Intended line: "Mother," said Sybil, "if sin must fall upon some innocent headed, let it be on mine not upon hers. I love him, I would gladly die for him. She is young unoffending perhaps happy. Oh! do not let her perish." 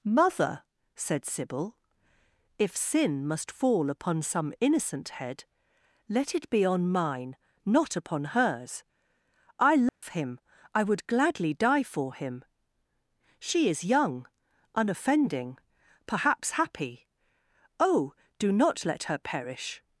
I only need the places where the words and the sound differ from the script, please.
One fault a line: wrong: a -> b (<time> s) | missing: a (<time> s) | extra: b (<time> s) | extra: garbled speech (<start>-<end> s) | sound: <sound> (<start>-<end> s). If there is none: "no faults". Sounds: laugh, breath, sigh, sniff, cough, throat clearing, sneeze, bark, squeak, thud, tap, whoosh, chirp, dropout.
wrong: headed -> head (5.2 s)
sound: dropout (9.9-10.0 s)